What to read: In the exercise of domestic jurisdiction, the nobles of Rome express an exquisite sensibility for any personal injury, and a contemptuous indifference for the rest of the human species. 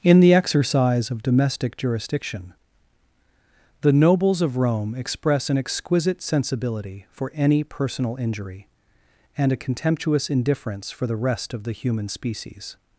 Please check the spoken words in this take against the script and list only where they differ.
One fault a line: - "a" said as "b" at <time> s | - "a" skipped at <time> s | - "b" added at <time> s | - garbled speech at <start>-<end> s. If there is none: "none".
none